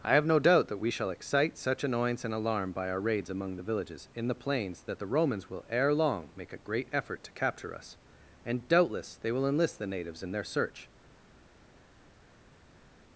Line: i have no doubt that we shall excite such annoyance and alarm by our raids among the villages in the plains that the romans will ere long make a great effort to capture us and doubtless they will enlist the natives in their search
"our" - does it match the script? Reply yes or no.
yes